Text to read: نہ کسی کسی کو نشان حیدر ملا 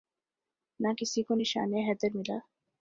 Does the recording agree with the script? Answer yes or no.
no